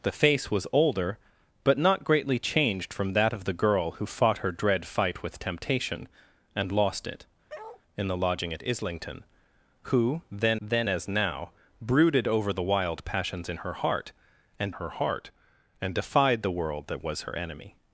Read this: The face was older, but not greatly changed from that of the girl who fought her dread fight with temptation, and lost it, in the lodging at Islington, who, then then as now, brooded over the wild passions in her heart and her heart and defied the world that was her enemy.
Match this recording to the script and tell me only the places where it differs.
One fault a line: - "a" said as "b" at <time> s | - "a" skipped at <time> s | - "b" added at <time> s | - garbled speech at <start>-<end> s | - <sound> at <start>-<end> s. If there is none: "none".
- bark at 7.5-7.8 s